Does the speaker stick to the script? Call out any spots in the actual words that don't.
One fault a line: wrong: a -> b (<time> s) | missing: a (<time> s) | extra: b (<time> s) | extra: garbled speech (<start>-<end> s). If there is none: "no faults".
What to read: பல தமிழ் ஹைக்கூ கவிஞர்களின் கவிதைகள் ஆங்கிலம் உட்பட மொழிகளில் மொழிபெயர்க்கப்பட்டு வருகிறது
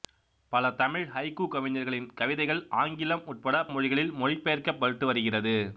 no faults